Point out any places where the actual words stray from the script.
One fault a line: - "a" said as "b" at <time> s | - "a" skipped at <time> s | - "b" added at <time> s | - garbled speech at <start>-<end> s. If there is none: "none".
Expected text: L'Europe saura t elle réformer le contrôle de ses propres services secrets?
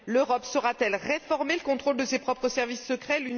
none